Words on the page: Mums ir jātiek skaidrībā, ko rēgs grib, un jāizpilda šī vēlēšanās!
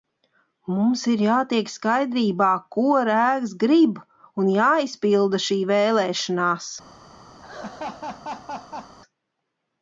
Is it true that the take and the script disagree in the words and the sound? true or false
true